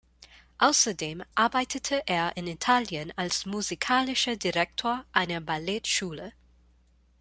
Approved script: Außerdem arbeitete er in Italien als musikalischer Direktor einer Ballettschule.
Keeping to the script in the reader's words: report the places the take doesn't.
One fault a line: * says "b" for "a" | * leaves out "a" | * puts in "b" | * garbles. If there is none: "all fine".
all fine